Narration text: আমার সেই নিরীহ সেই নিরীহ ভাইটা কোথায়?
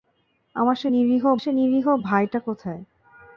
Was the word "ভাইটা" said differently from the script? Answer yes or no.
no